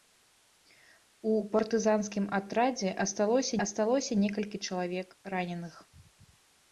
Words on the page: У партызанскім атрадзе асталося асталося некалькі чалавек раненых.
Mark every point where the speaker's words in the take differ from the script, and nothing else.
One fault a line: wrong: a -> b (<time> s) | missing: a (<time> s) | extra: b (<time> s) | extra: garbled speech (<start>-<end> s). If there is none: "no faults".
no faults